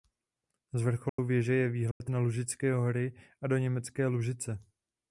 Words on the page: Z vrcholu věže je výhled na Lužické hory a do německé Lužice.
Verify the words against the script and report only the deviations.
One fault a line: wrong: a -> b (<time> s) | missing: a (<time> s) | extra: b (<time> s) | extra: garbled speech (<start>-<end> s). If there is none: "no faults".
no faults